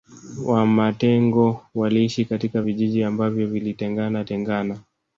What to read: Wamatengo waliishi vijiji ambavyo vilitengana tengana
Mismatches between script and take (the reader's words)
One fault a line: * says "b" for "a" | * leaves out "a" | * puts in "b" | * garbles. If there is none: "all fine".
* puts in "katika"